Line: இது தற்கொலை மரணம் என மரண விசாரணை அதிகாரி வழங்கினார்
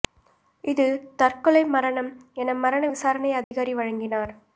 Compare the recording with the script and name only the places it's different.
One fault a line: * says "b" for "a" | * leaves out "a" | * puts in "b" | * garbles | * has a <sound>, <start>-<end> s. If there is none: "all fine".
* has a dropout, 3.4-3.5 s